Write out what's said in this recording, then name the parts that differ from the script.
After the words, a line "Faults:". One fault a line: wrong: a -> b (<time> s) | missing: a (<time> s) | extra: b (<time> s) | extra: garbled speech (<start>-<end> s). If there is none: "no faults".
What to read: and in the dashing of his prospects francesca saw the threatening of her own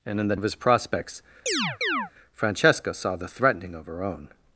and in the of his prospects francesca saw the threatening of her own
Faults:
missing: dashing (0.3 s)